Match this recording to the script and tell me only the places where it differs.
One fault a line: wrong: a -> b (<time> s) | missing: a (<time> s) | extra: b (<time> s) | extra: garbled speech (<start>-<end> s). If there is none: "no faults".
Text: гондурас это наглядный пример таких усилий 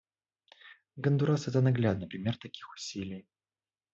no faults